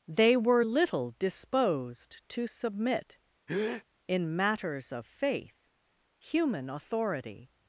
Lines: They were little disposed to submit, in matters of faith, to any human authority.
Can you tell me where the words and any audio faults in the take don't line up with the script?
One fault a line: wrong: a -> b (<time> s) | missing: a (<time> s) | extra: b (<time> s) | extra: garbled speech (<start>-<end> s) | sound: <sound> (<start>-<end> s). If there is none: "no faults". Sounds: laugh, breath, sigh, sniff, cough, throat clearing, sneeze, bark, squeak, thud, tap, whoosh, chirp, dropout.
sound: breath (3.5-3.8 s)
missing: to any (5.7 s)